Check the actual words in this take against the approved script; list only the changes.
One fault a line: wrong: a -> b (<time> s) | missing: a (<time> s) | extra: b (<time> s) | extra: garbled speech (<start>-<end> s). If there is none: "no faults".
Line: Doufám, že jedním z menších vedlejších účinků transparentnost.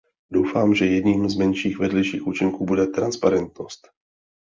extra: bude (2.6 s)